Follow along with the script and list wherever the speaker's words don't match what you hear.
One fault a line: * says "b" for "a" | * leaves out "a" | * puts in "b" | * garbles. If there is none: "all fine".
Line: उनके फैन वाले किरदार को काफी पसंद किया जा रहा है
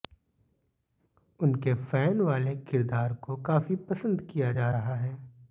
all fine